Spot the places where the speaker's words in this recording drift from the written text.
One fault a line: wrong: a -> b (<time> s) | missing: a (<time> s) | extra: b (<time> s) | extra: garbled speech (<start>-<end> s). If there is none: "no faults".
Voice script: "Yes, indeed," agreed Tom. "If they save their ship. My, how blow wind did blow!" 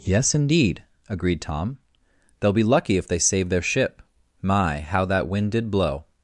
extra: They'll be lucky (2.4 s)
wrong: blow -> that (5.0 s)